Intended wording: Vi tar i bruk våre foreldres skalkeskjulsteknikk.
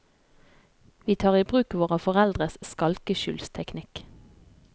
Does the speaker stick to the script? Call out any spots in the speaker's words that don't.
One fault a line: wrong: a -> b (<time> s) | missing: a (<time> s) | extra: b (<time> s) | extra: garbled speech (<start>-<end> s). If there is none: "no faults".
no faults